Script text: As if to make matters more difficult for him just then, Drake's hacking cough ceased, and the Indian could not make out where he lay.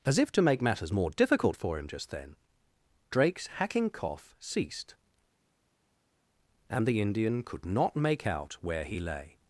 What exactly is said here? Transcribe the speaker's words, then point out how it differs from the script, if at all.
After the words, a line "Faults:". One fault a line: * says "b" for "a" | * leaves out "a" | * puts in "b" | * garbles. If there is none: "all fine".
As if to make matters more difficult for him just then, Drake's hacking cough ceased, and the Indian could not make out where he lay.
Faults:
all fine